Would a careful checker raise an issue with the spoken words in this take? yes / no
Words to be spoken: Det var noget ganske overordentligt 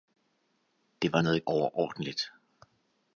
yes